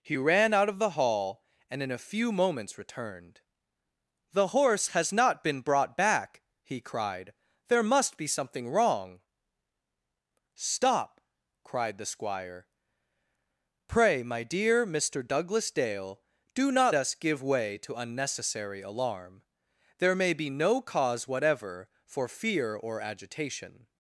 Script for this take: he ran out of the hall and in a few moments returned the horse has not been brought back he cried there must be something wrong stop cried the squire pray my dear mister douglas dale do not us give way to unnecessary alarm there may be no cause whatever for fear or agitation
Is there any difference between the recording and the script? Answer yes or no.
no